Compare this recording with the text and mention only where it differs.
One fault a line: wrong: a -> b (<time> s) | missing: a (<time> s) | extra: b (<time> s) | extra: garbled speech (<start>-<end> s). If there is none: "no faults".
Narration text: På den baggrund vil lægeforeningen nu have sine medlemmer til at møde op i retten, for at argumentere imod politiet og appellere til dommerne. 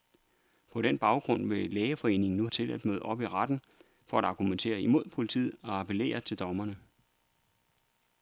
missing: have sine medlemmer (2.5 s)